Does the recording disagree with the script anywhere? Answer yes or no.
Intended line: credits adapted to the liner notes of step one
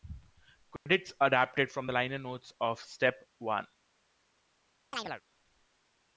yes